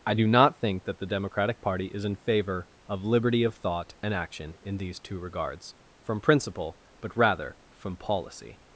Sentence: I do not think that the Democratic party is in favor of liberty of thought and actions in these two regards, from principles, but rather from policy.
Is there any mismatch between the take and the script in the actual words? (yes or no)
yes